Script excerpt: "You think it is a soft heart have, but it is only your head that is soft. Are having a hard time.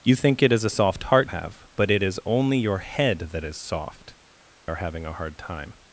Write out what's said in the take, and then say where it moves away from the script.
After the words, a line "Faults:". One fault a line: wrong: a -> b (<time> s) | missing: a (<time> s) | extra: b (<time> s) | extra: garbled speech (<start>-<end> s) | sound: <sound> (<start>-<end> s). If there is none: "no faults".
"You think it is a soft heart have, but it is only your head that is soft. Are having a hard time.
Faults:
no faults